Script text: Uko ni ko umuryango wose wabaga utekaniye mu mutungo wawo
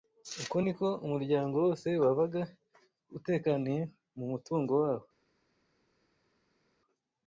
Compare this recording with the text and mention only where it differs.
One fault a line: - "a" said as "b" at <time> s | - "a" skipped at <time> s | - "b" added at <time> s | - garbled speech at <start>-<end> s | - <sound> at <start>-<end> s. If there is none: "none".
none